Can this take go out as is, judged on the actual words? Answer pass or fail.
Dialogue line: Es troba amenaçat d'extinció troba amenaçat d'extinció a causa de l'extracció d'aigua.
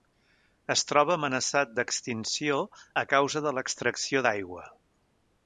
fail